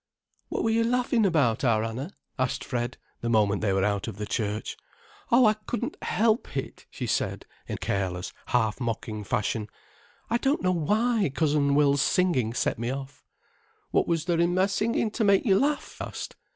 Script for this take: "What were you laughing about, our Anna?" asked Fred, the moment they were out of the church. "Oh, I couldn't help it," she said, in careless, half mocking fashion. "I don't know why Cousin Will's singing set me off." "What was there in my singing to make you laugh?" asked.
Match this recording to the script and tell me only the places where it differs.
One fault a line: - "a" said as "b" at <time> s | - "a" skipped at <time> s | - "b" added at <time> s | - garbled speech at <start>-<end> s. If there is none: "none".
none